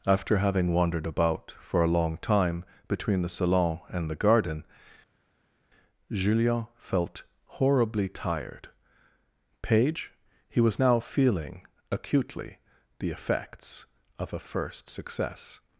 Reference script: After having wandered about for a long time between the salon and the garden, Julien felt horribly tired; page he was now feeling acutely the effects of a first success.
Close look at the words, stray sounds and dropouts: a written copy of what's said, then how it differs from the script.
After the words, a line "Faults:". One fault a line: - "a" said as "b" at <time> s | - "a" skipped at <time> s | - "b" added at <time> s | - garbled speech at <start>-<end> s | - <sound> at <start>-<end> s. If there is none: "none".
After having wandered about for a long time between the salon and the garden, Julien felt horribly tired; page he was now feeling acutely the effects of a first success.
Faults:
none